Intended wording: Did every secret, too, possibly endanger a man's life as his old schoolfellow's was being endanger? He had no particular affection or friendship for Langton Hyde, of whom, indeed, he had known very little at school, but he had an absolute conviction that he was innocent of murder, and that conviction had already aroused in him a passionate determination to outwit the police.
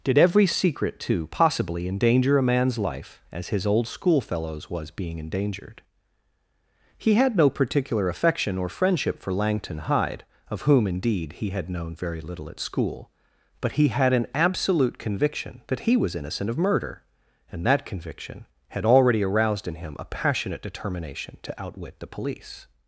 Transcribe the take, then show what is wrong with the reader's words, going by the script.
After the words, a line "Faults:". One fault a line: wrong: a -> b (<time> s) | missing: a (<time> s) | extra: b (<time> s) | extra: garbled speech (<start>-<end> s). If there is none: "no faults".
Did every secret, too, possibly endanger a man's life as his old schoolfellow's was being endangered? He had no particular affection or friendship for Langton Hyde, of whom, indeed, he had known very little at school, but he had an absolute conviction that he was innocent of murder, and that conviction had already aroused in him a passionate determination to outwit the police.
Faults:
wrong: endanger -> endangered (5.2 s)